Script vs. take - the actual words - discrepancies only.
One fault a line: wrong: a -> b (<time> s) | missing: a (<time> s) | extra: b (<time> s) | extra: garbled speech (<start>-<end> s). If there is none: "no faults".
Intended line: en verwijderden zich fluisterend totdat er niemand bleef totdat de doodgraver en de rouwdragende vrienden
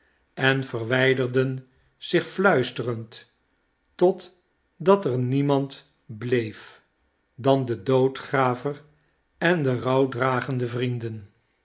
wrong: totdat -> dan (7.3 s)